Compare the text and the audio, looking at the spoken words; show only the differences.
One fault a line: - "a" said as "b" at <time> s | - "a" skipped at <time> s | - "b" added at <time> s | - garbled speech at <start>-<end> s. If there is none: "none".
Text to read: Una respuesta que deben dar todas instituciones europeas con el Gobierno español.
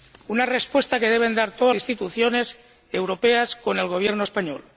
none